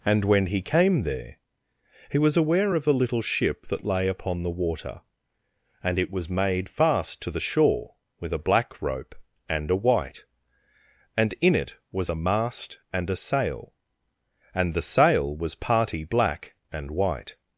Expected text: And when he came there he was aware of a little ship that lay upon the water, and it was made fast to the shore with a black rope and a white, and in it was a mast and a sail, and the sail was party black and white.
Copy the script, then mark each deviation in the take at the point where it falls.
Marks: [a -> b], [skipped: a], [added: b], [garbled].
And when he came there he was aware of a little ship that lay upon the water, and it was made fast to the shore with a black rope and a white, and in it was a mast and a sail, and the sail was party black and white.